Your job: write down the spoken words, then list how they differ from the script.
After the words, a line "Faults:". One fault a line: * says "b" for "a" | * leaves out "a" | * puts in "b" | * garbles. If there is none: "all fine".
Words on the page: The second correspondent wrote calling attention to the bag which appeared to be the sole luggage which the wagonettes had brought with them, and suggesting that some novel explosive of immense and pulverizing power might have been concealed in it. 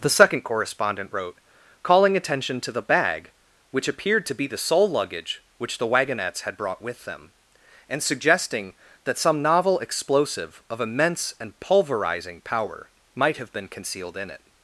The second correspondent wrote calling attention to the bag which appeared to be the sole luggage which the wagonettes had brought with them, and suggesting that some novel explosive of immense and pulverizing power might have been concealed in it.
Faults:
all fine